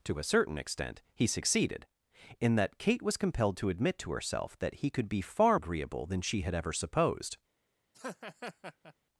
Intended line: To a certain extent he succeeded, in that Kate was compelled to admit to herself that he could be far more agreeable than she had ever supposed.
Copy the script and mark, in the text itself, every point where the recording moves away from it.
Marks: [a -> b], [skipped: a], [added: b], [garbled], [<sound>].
To a certain extent he succeeded, in that Kate was compelled to admit to herself that he could be far [skipped: more] agreeable than she had ever supposed. [laugh]